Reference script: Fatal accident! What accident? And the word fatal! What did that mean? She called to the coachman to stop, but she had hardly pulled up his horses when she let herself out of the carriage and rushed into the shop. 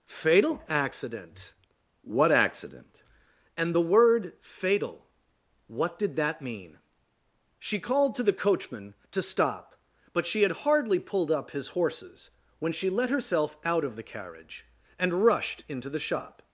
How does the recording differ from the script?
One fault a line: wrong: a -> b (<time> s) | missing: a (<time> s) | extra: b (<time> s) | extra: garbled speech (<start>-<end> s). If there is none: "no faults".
no faults